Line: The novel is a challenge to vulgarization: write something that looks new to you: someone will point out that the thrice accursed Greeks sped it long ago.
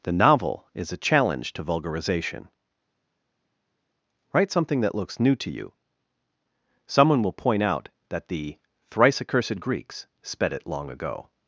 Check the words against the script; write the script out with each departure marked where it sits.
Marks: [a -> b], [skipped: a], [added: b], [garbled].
The novel is a challenge to vulgarization: write something that looks new to you: someone will point out that the thrice accursed Greeks sped it long ago.